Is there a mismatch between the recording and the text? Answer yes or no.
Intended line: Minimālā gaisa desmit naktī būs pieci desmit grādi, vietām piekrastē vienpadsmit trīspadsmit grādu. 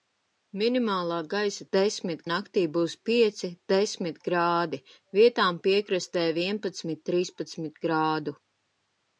no